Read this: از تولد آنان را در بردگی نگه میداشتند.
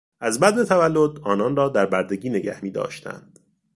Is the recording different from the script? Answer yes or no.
yes